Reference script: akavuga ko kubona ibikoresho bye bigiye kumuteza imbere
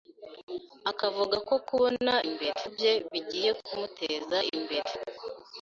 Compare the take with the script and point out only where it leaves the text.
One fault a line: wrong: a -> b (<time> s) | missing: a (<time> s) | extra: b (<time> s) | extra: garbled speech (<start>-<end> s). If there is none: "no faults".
wrong: ibikoresho -> imbere (2.3 s)